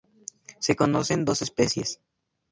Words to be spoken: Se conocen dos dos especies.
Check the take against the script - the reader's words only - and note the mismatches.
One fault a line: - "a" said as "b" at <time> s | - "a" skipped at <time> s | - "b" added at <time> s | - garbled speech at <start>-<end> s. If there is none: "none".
- "dos" skipped at 1.4 s